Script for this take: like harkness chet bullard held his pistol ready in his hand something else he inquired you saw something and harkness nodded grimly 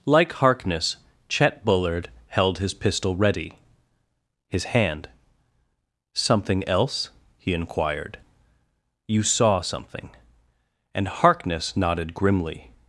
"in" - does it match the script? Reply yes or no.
no